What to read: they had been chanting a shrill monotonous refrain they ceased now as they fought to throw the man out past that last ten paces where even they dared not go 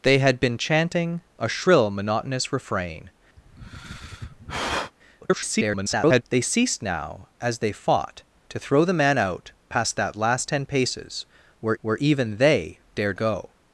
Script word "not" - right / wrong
wrong